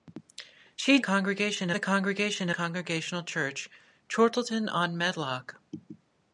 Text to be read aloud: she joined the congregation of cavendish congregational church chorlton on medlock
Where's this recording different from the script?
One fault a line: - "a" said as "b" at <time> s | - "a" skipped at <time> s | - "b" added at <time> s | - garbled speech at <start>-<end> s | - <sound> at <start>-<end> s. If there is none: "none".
- "joined" said as "congregation" at 1.0 s
- "of cavendish" skipped at 2.5 s